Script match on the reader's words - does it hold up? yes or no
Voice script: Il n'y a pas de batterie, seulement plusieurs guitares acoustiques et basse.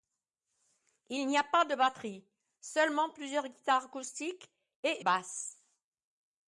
yes